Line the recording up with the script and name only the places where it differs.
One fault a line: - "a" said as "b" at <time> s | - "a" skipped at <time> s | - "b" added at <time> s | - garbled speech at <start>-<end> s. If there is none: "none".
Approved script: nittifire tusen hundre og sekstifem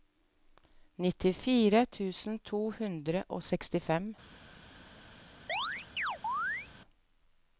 - "to" added at 2.5 s